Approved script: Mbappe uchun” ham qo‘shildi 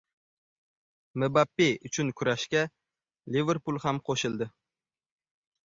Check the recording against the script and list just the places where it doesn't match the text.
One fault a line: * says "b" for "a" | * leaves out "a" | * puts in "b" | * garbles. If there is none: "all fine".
* puts in "kurashga Liverpul"